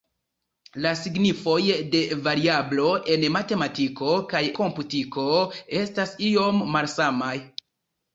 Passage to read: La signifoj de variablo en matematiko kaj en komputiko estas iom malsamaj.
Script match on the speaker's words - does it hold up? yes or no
no